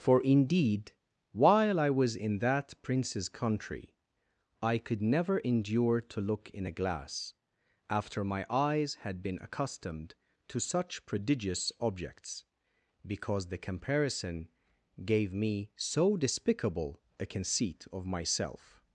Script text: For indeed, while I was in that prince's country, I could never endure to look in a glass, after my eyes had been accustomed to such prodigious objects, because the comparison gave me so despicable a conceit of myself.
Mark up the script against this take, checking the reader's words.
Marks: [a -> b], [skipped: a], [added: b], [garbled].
For indeed, while I was in that prince's country, I could never endure to look in a glass, after my eyes had been accustomed to such prodigious objects, because the comparison gave me so despicable a conceit of myself.